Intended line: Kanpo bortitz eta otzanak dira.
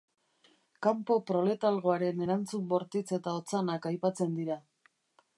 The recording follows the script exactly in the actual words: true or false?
false